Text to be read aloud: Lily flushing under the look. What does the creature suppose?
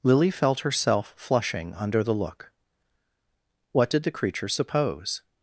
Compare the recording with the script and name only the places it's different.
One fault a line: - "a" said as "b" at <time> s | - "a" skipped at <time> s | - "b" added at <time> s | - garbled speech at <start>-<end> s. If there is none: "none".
- "felt herself" added at 0.3 s
- "does" said as "did" at 3.9 s